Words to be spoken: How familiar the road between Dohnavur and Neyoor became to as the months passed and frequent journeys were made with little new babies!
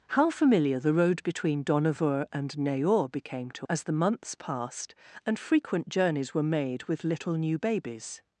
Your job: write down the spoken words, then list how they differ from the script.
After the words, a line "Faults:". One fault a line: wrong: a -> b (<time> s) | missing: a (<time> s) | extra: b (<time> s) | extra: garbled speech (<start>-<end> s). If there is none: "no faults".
How familiar the road between Dohnavur and Neyoor became to as the months passed and frequent journeys were made with little new babies!
Faults:
no faults